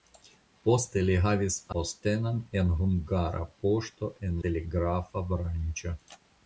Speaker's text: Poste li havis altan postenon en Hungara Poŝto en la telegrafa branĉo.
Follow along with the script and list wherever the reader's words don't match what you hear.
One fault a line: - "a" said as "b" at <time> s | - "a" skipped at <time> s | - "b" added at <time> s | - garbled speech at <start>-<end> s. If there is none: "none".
- "altan" skipped at 1.6 s
- "la" skipped at 4.4 s